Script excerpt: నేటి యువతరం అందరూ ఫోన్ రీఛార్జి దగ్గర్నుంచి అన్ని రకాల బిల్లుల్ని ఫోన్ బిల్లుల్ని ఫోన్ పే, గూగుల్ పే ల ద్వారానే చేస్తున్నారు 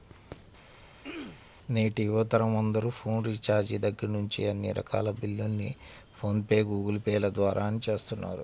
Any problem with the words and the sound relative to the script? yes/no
yes